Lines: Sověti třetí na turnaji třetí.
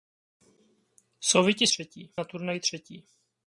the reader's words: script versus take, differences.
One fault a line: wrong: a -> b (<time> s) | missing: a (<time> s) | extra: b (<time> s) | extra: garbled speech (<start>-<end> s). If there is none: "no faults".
no faults